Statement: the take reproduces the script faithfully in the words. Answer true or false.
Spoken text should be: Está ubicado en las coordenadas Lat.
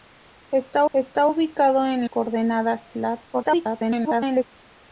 false